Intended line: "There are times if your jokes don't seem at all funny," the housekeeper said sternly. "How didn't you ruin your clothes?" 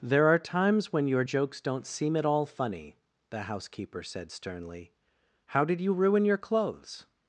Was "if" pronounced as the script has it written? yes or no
no